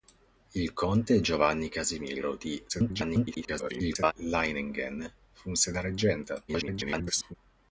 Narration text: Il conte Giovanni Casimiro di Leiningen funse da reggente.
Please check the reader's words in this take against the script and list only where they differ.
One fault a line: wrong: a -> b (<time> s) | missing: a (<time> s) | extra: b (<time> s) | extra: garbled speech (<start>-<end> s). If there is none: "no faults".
extra: garbled speech (2.7-4.1 s)
extra: garbled speech (6.5-7.3 s)